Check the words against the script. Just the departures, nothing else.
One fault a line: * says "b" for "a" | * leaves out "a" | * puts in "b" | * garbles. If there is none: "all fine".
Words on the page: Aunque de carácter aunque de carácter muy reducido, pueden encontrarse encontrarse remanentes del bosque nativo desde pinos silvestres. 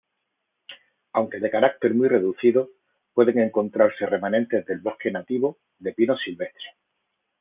* leaves out "aunque de carácter"
* leaves out "encontrarse"
* says "de" for "desde"